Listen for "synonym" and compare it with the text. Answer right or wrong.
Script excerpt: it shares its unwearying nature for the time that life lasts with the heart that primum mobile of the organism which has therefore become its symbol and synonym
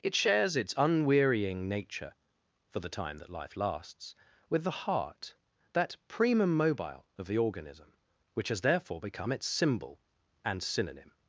right